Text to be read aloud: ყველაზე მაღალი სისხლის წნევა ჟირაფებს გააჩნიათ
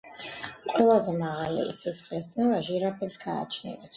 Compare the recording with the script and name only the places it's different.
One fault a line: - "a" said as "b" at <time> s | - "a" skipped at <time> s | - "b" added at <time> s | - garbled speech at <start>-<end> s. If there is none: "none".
none